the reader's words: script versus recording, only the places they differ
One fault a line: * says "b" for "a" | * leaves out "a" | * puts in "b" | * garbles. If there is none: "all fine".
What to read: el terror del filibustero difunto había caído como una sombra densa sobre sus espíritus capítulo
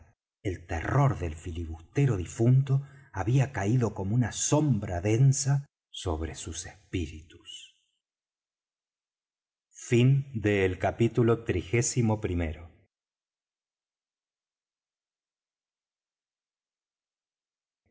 all fine